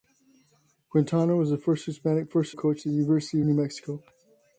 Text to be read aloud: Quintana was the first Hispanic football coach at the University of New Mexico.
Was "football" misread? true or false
true